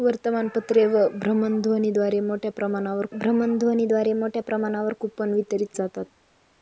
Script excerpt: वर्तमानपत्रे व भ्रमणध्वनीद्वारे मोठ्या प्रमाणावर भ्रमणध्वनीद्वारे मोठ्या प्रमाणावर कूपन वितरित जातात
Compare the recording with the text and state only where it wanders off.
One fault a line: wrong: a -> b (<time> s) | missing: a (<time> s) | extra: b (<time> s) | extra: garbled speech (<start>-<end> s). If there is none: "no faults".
no faults